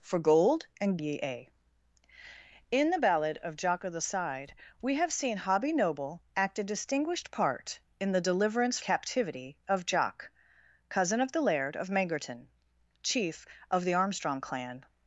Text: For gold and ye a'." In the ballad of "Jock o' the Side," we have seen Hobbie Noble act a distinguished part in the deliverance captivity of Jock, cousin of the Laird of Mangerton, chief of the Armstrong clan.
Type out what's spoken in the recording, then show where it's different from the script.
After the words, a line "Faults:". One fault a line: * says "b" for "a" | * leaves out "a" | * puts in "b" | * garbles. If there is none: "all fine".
For gold and ye a'." In the ballad of "Jock o' the Side," we have seen Hobbie Noble act a distinguished part in the deliverance captivity of Jock, cousin of the Laird of Mangerton, chief of the Armstrong clan.
Faults:
all fine